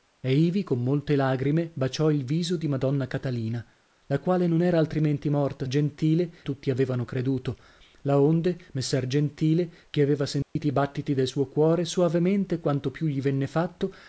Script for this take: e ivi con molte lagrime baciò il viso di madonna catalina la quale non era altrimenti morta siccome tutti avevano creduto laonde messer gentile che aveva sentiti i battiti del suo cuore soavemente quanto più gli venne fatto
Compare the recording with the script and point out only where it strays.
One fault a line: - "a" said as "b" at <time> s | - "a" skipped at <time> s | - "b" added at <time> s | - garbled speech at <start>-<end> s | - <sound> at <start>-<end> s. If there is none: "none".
- "siccome" said as "gentile" at 5.7 s
- dropout at 10.4-10.6 s